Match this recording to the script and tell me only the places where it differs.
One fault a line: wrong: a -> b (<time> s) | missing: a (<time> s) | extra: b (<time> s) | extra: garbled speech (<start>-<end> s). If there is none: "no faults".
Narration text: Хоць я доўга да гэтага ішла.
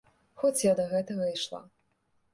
missing: доўга (0.7 s)